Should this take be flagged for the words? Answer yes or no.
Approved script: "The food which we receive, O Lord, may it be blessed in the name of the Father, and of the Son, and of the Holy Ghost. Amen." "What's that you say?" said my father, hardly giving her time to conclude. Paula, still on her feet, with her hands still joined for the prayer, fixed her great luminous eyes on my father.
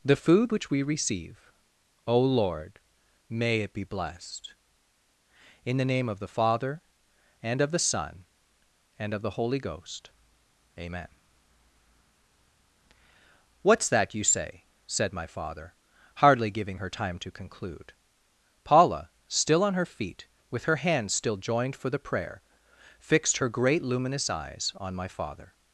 no